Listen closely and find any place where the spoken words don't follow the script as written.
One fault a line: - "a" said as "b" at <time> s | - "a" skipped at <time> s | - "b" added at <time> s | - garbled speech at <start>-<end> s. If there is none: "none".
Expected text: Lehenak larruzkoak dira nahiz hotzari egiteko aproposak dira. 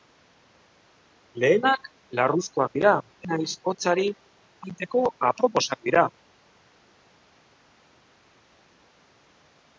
none